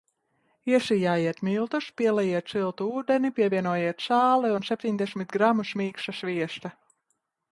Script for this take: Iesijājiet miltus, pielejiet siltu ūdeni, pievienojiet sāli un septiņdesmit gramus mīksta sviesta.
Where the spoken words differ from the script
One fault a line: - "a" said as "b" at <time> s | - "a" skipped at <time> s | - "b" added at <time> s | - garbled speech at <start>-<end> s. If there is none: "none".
none